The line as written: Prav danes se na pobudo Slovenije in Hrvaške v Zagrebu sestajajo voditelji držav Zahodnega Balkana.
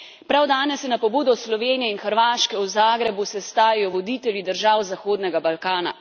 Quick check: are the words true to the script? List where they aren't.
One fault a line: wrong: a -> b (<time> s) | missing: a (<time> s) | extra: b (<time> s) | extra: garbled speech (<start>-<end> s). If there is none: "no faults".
no faults